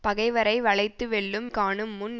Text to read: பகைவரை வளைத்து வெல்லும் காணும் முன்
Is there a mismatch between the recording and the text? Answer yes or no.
no